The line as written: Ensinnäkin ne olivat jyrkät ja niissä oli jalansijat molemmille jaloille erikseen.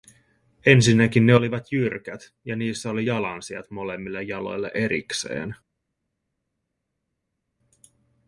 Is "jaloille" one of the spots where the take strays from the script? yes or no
no